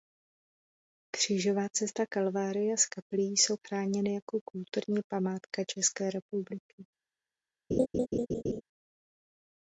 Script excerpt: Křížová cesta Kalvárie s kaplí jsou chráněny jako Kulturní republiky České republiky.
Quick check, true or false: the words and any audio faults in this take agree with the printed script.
false